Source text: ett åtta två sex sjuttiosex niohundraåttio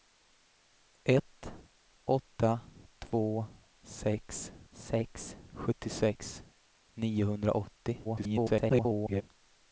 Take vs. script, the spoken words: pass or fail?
fail